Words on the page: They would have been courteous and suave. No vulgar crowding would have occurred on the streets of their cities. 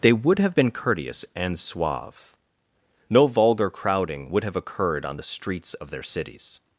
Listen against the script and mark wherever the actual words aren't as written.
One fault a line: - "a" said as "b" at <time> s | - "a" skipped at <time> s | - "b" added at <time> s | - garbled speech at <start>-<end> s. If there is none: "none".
none